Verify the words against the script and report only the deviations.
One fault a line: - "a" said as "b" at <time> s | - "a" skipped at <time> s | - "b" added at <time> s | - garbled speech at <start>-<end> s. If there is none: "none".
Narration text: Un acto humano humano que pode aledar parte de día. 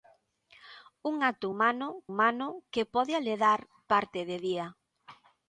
none